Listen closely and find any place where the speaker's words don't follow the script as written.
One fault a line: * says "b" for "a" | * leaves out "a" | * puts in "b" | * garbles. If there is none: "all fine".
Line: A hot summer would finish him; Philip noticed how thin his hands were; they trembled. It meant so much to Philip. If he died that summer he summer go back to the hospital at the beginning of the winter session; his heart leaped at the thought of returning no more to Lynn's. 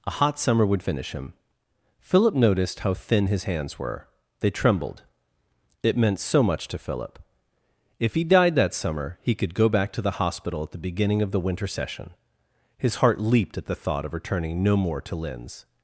* says "could" for "summer"